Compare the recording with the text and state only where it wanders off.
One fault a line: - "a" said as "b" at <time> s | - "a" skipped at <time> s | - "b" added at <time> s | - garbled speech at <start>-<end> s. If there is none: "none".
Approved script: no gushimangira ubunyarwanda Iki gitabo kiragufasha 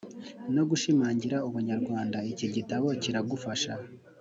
none